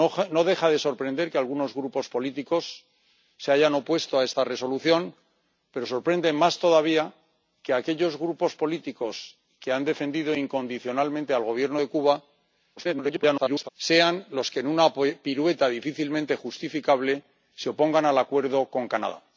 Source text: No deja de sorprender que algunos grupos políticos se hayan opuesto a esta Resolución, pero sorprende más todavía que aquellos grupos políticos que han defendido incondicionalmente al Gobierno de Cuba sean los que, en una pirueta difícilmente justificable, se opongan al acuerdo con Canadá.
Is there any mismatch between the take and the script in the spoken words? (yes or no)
yes